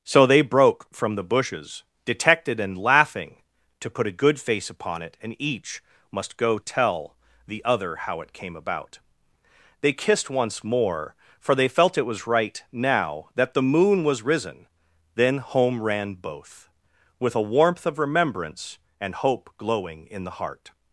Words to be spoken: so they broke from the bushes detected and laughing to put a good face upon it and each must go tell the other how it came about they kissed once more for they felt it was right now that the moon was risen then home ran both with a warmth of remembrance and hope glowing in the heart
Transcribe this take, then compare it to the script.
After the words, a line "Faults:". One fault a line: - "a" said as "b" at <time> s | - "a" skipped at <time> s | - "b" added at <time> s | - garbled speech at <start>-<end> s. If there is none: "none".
so they broke from the bushes detected and laughing to put a good face upon it and each must go tell the other how it came about they kissed once more for they felt it was right now that the moon was risen then home ran both with a warmth of remembrance and hope glowing in the heart
Faults:
none